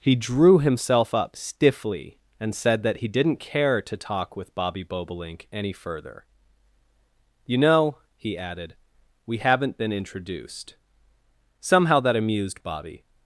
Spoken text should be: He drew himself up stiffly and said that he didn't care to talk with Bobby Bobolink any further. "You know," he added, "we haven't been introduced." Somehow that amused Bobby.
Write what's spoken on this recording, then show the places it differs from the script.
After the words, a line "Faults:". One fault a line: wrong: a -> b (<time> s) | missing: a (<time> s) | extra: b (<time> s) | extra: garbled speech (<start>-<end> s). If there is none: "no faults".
He drew himself up stiffly and said that he didn't care to talk with Bobby Bobolink any further. "You know," he added, "we haven't been introduced." Somehow that amused Bobby.
Faults:
no faults